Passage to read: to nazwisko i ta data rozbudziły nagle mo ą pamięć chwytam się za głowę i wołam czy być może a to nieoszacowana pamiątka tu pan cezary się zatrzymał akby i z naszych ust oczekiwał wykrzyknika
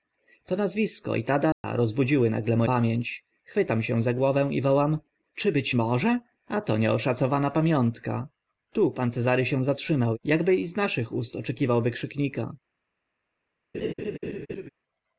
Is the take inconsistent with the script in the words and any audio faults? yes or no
yes